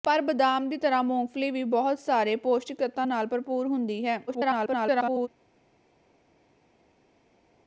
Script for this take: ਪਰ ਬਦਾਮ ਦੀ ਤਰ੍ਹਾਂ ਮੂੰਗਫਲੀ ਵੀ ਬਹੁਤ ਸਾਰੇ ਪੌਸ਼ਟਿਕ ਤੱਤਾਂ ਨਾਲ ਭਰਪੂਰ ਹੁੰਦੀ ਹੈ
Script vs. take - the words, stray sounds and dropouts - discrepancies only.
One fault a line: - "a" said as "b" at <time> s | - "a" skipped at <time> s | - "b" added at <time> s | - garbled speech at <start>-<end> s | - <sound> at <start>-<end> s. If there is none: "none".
- garbled speech at 4.3-5.3 s